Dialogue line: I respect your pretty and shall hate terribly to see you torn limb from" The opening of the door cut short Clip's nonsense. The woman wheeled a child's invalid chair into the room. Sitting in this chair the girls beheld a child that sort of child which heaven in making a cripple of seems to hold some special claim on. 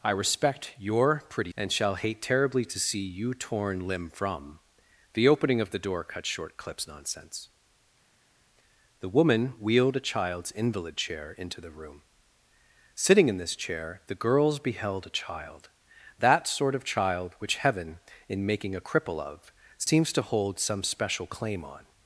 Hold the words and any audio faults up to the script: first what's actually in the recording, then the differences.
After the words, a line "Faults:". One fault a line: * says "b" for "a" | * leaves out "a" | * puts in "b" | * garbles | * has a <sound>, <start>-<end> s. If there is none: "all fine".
I respect your pretty and shall hate terribly to see you torn limb from" The opening of the door cut short Clip's nonsense. The woman wheeled a child's invalid chair into the room. Sitting in this chair the girls beheld a child that sort of child which heaven in making a cripple of seems to hold some special claim on.
Faults:
all fine